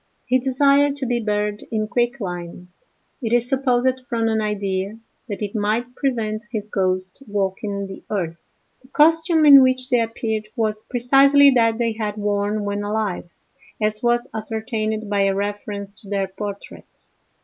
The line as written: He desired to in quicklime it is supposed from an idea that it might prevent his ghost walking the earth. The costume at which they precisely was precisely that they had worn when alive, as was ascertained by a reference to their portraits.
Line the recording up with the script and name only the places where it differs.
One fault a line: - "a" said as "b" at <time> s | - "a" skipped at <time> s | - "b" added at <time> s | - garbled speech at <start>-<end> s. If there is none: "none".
- "be buried" added at 1.1 s
- "at" said as "in" at 9.4 s
- "precisely" said as "appeared" at 10.0 s